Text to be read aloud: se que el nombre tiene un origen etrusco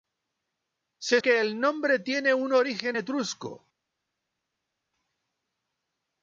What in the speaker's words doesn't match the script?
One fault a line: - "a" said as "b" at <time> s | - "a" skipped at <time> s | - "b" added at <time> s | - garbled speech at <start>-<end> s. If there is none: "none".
none